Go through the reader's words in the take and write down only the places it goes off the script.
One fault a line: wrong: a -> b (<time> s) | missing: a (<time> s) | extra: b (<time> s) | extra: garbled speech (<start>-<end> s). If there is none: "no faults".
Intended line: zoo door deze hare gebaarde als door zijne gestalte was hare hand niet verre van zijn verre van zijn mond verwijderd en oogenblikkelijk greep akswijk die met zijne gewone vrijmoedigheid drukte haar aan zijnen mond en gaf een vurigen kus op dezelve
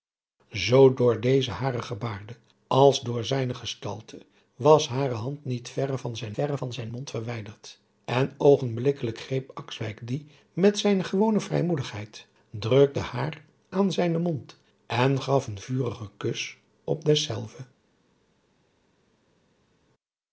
no faults